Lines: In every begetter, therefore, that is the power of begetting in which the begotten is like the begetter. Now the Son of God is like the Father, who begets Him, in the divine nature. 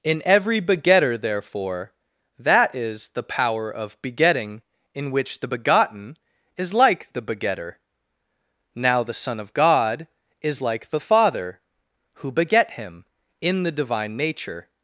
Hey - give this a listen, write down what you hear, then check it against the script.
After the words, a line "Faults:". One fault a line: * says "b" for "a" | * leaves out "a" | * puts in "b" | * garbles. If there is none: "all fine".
In every begetter, therefore, that is the power of begetting in which the begotten is like the begetter. Now the Son of God is like the Father, who beget Him, in the divine nature.
Faults:
* says "beget" for "begets"